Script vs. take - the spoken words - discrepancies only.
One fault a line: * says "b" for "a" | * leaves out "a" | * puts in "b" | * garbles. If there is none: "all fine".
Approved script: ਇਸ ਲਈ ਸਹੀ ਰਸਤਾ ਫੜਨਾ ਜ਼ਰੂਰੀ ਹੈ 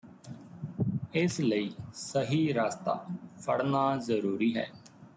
all fine